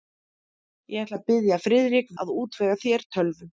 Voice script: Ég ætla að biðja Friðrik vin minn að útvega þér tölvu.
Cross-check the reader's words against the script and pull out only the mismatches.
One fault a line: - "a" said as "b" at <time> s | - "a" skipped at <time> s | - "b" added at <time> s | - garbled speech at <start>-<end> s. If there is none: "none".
- "vin minn" skipped at 2.2 s